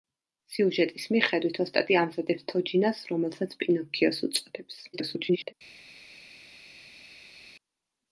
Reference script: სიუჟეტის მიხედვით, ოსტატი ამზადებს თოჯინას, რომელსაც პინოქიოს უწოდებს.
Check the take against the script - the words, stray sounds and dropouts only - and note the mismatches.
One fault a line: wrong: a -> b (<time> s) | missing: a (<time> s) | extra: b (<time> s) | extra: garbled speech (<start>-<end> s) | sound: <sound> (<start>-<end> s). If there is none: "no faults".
extra: garbled speech (4.9-5.5 s)